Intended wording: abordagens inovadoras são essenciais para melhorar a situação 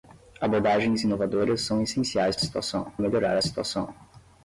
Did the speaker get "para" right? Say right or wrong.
wrong